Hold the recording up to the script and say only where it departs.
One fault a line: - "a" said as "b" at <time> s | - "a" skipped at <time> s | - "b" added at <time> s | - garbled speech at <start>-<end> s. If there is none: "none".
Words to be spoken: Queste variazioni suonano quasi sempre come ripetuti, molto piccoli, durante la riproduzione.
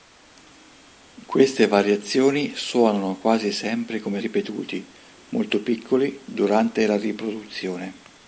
none